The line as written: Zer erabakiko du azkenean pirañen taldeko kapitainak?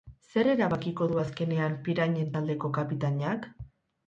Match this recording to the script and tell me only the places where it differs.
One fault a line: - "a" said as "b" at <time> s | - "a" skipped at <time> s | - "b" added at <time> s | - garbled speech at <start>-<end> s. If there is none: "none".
none